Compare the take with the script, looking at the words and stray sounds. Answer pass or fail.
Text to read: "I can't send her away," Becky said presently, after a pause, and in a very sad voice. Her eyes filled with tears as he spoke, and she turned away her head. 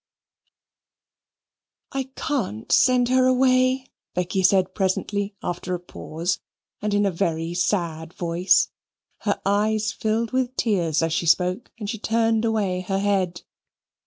fail